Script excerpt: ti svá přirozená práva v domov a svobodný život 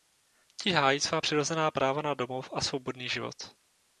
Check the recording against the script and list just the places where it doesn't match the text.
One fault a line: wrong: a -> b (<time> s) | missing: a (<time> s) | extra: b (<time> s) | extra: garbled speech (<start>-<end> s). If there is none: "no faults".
extra: hájí (0.7 s)
wrong: v -> na (2.0 s)